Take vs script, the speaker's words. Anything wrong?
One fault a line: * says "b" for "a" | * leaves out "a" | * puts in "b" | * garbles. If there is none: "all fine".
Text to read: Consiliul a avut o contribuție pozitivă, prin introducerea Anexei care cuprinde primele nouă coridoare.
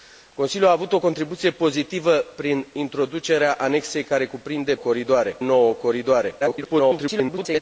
* says "coridoare" for "primele"
* garbles